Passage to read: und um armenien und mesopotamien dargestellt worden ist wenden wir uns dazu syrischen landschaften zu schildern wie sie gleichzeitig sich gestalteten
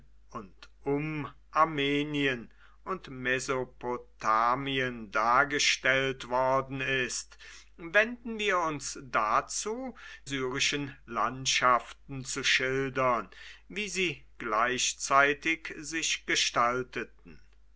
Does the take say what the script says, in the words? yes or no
yes